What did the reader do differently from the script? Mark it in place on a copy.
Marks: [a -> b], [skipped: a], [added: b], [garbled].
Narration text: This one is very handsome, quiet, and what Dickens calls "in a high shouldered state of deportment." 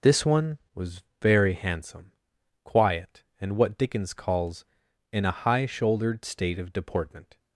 This one [is -> was] very handsome, quiet, and what Dickens calls "in a high shouldered state of deportment."